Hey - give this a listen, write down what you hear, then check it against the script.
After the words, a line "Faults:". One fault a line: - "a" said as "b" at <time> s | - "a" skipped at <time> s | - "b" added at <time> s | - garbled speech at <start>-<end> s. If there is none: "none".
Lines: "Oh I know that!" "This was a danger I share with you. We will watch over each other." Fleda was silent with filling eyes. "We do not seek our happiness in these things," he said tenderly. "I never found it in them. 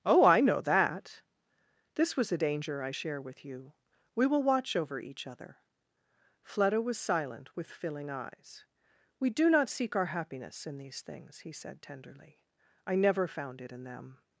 "Oh I know that!" "This was a danger I share with you. We will watch over each other." Fleda was silent with filling eyes. "We do not seek our happiness in these things," he said tenderly. "I never found it in them.
Faults:
none